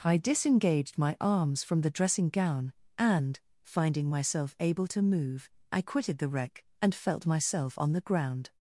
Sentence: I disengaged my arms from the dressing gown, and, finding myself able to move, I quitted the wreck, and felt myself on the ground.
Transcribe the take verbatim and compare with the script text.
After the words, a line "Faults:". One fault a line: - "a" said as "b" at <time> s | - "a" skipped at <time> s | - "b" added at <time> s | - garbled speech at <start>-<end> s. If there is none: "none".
I disengaged my arms from the dressing gown, and, finding myself able to move, I quitted the wreck, and felt myself on the ground.
Faults:
none